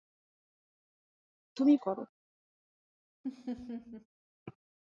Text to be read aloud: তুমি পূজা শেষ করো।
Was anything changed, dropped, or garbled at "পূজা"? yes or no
yes